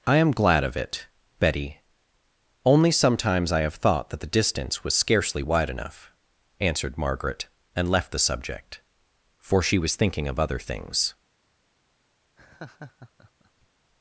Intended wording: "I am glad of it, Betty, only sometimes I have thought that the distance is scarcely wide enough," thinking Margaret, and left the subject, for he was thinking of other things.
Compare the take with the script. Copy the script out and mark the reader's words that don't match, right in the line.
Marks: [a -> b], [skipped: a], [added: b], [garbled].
"I am glad of it, Betty, only sometimes I have thought that the distance [is -> was] scarcely wide enough," [thinking -> answered] Margaret, and left the subject, for [he -> she] was thinking of other things.